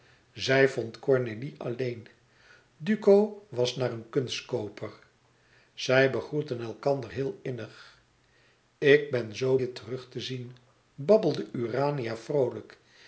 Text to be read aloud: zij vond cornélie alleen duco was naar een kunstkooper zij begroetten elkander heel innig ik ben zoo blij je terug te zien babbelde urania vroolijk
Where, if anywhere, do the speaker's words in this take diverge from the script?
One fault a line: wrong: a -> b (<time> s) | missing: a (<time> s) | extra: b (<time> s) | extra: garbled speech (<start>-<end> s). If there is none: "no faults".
missing: blij (9.6 s)